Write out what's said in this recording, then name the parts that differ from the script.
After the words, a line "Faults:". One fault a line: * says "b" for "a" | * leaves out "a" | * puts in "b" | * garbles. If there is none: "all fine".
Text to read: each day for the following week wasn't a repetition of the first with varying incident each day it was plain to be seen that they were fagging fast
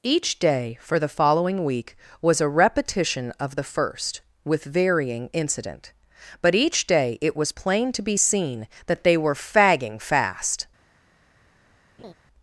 each day for the following week was a repetition of the first with varying incident but each day it was plain to be seen that they were fagging fast
Faults:
* says "was" for "wasn't"
* puts in "but"